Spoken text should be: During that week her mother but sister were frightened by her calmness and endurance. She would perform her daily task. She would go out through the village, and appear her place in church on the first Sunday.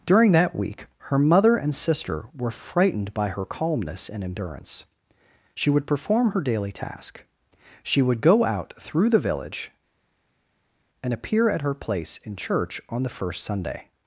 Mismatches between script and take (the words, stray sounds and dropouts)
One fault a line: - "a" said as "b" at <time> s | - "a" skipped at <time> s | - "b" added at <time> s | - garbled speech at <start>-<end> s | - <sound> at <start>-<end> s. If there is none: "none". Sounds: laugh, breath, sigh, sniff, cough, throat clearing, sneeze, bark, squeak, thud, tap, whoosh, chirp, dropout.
- "but" said as "and" at 1.6 s
- "at" added at 11.5 s